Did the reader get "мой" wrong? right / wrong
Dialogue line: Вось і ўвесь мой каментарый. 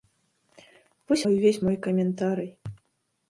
right